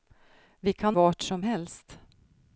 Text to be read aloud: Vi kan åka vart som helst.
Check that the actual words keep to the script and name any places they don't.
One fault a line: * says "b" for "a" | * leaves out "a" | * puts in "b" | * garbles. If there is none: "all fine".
* leaves out "åka"